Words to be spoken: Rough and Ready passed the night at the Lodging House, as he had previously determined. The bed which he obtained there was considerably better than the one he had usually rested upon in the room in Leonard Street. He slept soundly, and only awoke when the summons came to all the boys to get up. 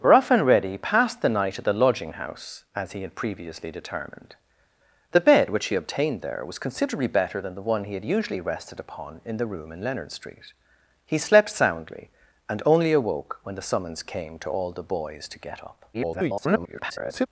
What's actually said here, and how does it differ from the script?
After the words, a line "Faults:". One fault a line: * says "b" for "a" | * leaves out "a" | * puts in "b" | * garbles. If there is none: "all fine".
Rough and Ready passed the night at the Lodging House, as he had previously determined. The bed which he obtained there was considerably better than the one he had usually rested upon in the room in Leonard Street. He slept soundly, and only awoke when the summons came to all the boys to get up. [garbled]
Faults:
* garbles